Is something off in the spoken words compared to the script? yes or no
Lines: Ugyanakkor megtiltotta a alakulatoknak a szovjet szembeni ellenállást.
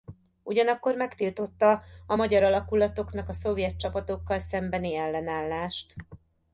yes